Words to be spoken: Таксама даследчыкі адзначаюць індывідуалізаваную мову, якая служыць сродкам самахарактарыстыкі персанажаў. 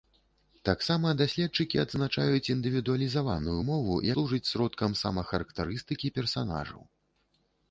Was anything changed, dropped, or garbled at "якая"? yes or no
yes